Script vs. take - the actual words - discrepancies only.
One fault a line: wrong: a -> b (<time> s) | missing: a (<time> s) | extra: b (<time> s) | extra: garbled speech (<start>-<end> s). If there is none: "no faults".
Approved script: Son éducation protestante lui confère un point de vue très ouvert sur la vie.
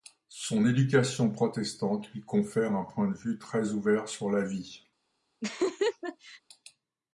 no faults